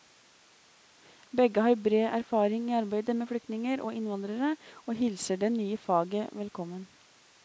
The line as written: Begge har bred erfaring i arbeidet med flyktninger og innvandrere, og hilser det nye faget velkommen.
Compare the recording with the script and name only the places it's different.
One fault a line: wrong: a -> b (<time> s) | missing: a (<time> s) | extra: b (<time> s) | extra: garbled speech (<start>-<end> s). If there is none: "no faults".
no faults